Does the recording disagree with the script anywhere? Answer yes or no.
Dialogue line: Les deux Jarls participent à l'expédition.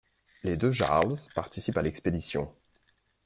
no